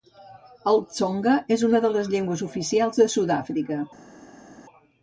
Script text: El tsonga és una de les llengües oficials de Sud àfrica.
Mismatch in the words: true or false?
false